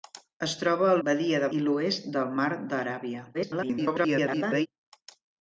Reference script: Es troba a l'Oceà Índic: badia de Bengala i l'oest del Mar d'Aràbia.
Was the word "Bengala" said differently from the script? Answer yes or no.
yes